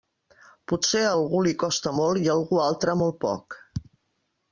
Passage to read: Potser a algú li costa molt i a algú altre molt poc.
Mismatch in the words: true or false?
false